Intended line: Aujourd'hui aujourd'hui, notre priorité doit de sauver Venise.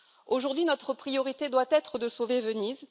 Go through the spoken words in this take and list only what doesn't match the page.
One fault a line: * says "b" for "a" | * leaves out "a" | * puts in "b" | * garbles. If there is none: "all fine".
* leaves out "aujourd'hui"
* puts in "être"